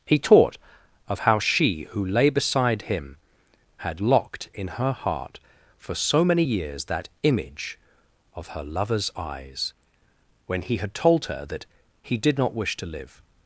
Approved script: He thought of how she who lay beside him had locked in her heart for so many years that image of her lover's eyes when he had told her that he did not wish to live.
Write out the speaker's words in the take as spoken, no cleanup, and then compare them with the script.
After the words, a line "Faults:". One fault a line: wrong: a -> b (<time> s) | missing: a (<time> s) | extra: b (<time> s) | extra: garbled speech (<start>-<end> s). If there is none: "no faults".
He taught of how she who lay beside him had locked in her heart for so many years that image of her lover's eyes when he had told her that he did not wish to live.
Faults:
wrong: thought -> taught (0.2 s)